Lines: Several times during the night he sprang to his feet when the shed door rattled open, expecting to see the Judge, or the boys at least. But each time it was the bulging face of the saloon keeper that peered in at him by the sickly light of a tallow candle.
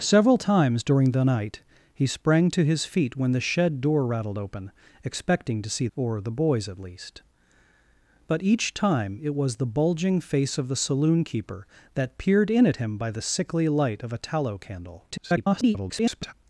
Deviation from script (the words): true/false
true